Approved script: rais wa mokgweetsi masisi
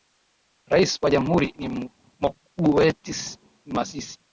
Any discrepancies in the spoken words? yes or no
yes